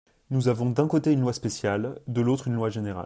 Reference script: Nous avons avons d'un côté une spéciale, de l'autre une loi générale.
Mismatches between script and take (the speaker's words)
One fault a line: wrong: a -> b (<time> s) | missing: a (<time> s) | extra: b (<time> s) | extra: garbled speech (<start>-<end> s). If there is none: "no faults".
missing: avons (0.7 s)
extra: loi (1.2 s)